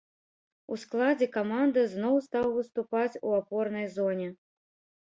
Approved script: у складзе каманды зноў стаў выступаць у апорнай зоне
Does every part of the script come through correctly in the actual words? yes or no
yes